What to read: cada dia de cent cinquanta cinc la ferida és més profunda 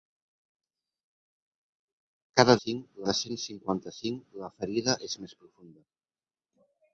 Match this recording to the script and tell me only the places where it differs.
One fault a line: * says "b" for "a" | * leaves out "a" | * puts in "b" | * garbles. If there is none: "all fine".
* says "cinc" for "dia"